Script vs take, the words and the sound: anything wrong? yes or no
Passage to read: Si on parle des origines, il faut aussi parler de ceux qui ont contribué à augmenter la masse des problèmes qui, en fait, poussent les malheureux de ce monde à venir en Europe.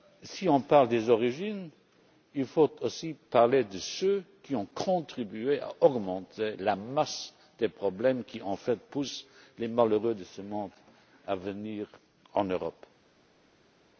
no